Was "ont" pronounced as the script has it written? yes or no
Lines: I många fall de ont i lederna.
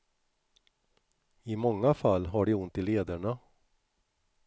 yes